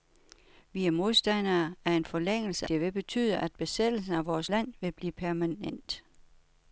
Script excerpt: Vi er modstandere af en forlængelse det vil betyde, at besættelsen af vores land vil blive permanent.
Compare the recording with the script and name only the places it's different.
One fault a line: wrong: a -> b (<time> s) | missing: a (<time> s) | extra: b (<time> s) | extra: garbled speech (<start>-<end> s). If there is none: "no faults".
no faults